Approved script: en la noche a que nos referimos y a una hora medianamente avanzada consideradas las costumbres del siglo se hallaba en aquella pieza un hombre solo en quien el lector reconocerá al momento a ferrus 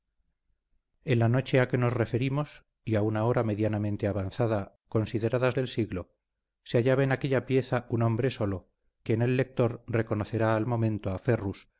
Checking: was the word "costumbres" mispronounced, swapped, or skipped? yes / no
yes